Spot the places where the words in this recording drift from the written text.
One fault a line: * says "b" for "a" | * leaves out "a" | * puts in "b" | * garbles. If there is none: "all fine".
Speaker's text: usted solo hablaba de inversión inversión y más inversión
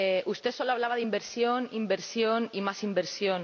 all fine